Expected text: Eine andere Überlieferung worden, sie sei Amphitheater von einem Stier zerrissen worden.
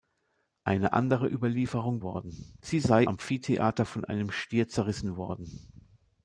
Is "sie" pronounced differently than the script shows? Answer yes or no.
no